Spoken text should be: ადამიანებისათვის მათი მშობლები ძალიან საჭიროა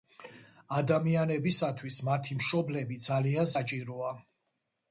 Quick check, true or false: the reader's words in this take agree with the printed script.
true